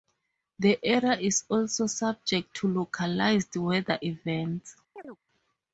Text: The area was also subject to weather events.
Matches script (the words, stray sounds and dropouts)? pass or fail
fail